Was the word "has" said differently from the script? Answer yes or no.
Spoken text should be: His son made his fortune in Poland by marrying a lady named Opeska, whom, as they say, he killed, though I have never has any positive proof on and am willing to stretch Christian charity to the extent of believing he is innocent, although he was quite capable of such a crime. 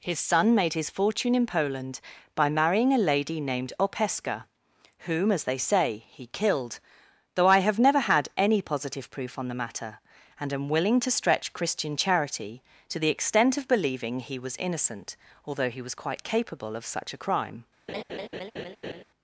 yes